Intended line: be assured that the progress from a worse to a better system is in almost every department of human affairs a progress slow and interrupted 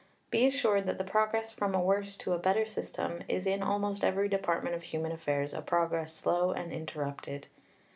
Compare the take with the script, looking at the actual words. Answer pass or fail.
pass